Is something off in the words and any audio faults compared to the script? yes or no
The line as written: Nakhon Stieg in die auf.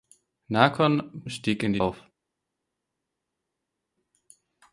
no